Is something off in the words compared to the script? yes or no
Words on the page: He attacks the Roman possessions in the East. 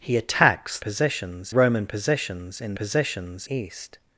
yes